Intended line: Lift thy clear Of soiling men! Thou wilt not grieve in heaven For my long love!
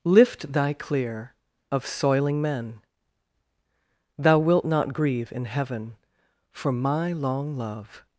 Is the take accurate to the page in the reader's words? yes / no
yes